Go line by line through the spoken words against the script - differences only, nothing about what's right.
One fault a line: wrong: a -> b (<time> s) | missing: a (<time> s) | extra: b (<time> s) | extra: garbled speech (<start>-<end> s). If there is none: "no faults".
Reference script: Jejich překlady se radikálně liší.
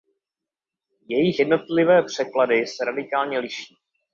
extra: jednotlivé (1.4 s)